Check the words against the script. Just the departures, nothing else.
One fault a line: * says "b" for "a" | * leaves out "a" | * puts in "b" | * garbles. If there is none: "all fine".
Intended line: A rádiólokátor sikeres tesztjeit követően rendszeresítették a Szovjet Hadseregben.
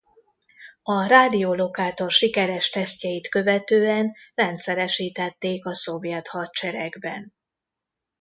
all fine